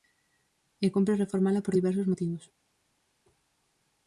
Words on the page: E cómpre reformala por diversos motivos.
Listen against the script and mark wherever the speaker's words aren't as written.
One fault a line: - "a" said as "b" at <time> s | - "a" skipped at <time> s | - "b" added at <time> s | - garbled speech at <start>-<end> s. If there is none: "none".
none